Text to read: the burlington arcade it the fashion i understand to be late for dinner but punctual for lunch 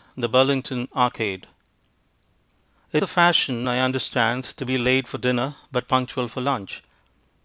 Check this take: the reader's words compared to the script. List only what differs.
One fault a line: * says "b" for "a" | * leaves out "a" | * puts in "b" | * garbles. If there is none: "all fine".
all fine